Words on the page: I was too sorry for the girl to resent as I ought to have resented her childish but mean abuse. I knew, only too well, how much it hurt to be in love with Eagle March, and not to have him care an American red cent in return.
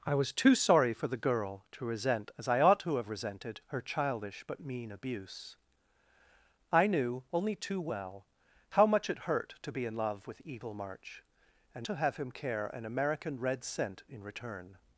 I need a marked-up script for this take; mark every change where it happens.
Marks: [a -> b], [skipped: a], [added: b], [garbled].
I was too sorry for the girl to resent as I ought to have resented her childish but mean abuse. I knew, only too well, how much it hurt to be in love with Eagle March, and [skipped: not] to have him care an American red cent in return.